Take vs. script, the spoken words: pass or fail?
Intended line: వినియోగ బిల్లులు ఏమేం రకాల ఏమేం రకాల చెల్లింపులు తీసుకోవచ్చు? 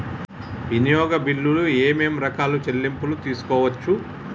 fail